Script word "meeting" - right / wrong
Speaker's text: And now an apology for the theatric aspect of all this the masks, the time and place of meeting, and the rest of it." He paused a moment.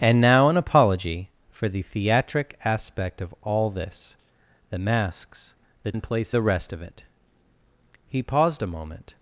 wrong